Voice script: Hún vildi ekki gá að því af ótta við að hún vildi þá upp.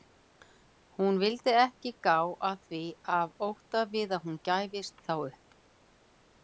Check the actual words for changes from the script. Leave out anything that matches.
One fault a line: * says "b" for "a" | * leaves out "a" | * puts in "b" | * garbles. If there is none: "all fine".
* says "gæfist" for "vildi"